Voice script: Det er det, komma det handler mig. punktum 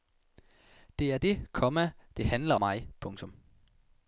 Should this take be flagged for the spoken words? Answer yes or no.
no